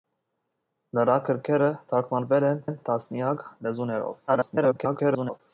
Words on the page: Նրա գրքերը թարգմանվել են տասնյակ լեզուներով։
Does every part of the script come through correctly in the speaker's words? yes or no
no